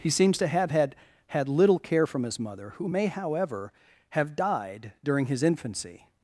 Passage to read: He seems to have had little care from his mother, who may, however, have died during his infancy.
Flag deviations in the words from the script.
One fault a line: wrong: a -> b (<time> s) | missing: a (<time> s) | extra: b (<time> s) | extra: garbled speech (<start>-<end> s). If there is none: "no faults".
extra: had (1.3 s)